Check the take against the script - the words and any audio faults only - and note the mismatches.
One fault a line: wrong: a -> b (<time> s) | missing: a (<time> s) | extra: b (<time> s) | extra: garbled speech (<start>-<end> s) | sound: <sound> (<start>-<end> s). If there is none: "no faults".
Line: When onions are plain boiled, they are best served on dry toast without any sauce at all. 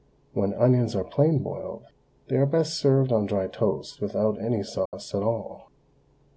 sound: dropout (4.9-4.9 s)